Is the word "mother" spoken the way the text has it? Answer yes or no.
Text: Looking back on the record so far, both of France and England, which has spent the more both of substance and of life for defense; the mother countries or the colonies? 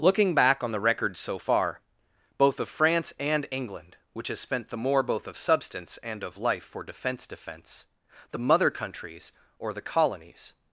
yes